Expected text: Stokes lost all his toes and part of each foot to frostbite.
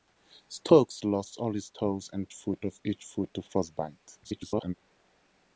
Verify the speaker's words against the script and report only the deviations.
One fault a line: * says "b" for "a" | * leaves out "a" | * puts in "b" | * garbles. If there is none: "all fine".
* says "foot" for "part"
* garbles